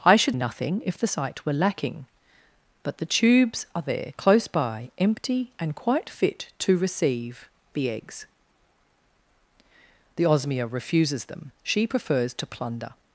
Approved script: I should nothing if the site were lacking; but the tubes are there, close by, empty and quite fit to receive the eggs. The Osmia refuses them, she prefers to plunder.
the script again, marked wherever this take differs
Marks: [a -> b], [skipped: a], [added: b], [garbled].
I should nothing if the site were lacking; but the tubes are there, close by, empty and quite fit to receive the eggs. The Osmia refuses them, she prefers to plunder.